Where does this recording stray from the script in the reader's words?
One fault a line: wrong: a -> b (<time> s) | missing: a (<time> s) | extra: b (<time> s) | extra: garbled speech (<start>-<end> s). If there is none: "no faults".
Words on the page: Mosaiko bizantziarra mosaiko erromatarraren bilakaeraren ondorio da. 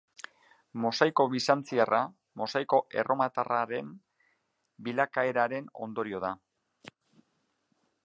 no faults